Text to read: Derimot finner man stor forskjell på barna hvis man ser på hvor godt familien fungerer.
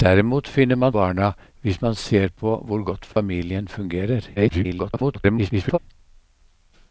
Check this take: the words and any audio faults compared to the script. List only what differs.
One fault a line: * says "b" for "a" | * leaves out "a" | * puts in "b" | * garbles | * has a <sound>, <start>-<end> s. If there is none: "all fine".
* leaves out "stor forskjell på"
* has a dropout, 3.1-3.2 s
* garbles